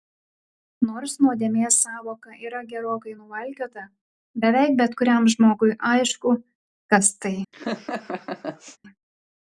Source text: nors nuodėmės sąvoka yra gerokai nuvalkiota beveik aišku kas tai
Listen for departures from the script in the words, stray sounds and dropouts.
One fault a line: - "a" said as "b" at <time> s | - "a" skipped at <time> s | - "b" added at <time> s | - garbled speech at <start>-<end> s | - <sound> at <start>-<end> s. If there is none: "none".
- "bet kuriam žmogui" added at 4.8 s
- laugh at 7.5-8.8 s